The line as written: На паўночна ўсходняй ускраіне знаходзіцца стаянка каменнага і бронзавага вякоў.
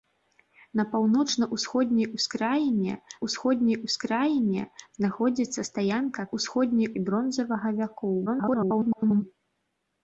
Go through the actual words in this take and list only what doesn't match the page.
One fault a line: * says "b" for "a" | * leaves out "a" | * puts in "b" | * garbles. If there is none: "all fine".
* puts in "ўсходняй ускраіне"
* says "ўсходняй" for "каменнага"
* garbles